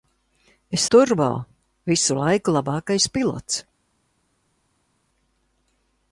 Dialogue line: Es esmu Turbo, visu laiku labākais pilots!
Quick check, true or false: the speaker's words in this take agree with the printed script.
false